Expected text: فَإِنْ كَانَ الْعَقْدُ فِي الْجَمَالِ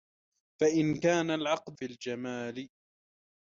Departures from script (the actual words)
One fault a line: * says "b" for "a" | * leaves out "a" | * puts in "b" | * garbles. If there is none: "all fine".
all fine